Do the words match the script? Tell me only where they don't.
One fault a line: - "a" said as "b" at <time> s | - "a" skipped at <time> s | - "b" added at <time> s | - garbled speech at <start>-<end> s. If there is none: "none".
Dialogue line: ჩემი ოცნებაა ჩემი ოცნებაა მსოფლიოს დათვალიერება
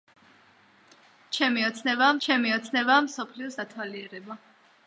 none